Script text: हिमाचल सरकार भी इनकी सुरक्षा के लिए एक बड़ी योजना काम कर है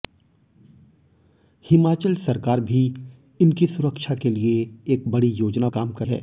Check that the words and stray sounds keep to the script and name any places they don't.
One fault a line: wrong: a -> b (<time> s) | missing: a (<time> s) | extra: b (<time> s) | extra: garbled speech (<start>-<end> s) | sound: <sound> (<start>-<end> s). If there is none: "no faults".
no faults